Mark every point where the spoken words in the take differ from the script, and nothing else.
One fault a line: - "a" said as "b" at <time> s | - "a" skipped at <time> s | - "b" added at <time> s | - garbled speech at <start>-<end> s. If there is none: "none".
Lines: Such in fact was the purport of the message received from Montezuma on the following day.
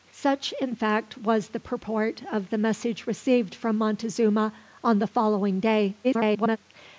- garbled speech at 6.0-6.6 s